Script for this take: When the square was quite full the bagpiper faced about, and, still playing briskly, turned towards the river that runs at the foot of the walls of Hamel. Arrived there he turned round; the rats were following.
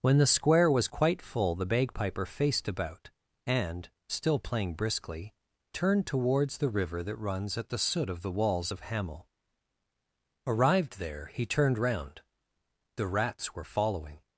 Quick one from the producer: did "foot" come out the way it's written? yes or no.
no